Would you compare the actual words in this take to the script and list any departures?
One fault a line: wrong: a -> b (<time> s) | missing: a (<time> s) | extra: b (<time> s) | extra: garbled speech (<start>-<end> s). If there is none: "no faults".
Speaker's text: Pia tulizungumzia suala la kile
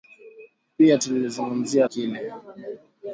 missing: suala la (1.9 s)